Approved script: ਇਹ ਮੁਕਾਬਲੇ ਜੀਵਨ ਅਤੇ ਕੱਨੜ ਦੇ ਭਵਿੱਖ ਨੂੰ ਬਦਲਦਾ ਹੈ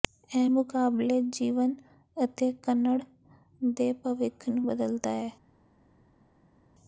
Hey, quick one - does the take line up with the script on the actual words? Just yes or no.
yes